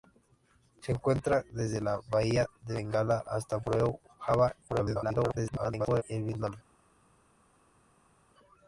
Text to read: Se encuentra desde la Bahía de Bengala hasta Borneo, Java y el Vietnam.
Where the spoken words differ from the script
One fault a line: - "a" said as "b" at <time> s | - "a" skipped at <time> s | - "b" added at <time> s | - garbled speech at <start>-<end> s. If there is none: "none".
- garbled speech at 4.7-6.0 s